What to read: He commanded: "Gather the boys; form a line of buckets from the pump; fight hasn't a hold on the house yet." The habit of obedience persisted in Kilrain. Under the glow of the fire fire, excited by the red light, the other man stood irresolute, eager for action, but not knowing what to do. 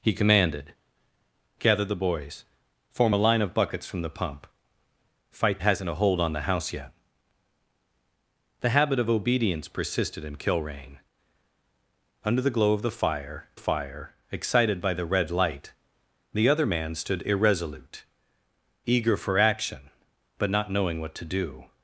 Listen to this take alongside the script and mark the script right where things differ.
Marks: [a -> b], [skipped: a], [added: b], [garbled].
He commanded: "Gather the boys; form a line of buckets from the pump; fight hasn't a hold on the house yet." The habit of obedience persisted in Kilrain. Under the glow of the fire fire, excited by the red light, the other man stood irresolute, eager for action, but not knowing what to do.